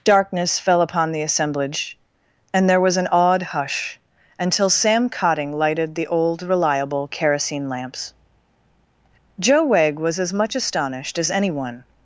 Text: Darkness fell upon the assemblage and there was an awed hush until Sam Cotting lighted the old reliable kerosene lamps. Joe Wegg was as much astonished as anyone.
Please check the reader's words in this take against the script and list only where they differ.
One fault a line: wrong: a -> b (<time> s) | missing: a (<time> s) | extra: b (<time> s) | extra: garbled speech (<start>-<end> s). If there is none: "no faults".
no faults